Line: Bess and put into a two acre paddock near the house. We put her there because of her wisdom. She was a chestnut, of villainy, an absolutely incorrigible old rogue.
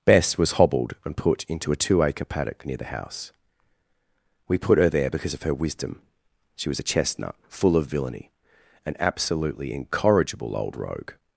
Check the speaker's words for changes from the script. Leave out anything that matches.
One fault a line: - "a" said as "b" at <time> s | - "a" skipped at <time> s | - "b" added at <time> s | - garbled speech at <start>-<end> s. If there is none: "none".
- "was hobbled" added at 0.3 s
- "full" added at 7.5 s